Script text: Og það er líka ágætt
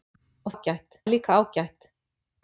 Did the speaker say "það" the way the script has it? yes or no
no